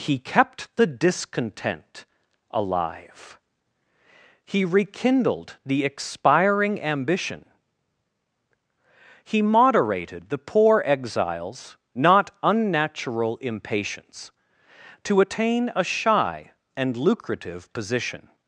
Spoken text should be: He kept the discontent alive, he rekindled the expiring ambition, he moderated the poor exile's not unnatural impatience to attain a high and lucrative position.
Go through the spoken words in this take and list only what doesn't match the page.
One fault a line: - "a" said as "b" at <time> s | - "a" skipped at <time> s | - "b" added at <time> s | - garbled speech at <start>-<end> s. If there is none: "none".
- "high" said as "shy" at 15.8 s